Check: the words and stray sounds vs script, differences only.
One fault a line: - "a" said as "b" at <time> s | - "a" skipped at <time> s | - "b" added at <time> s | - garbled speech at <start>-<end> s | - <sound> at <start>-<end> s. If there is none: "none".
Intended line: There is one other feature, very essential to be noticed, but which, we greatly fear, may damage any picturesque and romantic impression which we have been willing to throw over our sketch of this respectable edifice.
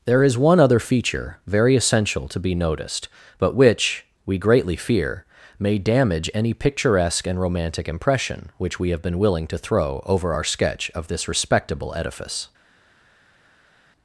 none